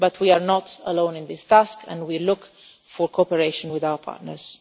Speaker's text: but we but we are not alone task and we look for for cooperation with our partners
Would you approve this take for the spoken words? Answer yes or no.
no